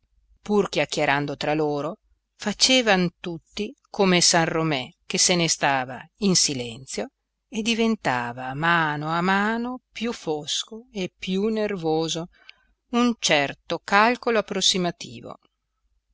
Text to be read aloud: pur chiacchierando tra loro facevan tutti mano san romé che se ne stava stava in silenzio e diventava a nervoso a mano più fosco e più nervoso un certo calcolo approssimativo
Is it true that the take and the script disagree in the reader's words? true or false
true